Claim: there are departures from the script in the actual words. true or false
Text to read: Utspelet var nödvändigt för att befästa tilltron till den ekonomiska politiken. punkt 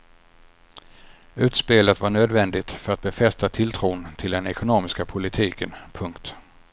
false